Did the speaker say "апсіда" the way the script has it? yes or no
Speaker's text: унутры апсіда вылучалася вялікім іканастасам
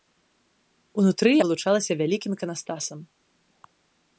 no